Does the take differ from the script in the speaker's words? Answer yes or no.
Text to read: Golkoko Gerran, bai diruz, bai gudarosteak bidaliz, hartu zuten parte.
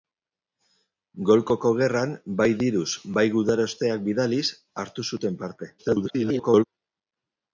yes